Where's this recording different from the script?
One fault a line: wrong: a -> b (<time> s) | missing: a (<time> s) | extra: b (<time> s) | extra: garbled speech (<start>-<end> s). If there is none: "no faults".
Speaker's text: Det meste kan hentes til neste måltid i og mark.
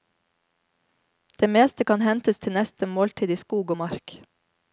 extra: skog (3.4 s)